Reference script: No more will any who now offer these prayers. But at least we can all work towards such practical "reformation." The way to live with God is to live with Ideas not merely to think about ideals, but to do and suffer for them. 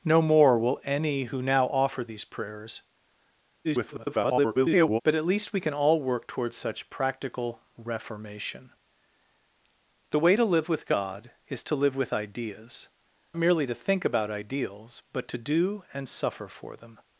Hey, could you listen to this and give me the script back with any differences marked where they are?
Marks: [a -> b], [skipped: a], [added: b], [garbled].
No more will any who now offer these prayers. [garbled] But at least we can all work towards such practical "reformation." The way to live with God is to live with Ideas [skipped: not] merely to think about ideals, but to do and suffer for them.